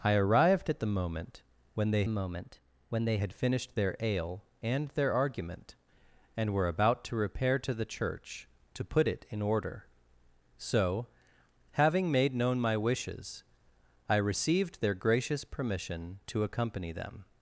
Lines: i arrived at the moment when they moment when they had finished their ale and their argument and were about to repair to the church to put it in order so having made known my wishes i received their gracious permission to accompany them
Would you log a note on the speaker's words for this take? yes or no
no